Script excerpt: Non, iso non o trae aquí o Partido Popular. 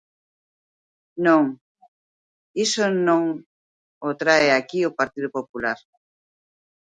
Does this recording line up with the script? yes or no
yes